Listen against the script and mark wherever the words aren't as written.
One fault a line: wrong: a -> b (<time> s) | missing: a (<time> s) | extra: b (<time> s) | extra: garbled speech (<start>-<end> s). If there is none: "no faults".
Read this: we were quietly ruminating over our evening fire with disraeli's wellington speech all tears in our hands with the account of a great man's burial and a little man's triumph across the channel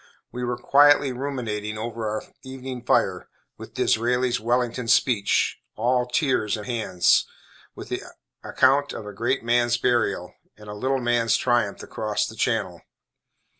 missing: our (6.7 s)